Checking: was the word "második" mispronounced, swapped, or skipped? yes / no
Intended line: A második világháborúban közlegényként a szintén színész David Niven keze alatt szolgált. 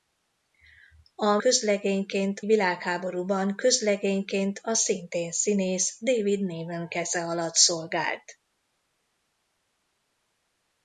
yes